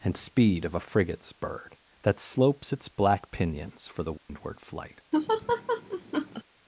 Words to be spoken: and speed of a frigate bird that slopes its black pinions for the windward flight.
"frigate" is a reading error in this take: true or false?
true